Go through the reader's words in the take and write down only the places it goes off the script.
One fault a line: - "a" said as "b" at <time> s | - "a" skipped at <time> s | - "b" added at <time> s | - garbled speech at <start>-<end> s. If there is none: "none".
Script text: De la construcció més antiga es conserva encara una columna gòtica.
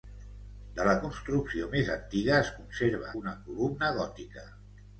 - "encara" skipped at 3.1 s